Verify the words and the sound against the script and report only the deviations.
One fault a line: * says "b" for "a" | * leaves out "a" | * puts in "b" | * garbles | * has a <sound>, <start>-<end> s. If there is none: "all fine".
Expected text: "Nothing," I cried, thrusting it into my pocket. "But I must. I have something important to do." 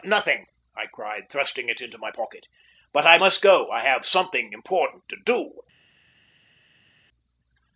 * puts in "go"